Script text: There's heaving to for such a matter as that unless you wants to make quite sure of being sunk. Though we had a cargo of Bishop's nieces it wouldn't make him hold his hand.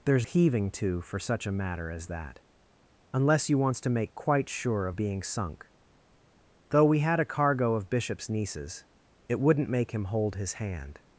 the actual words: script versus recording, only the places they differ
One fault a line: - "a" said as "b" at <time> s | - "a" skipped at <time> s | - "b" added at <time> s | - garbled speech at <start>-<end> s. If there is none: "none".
none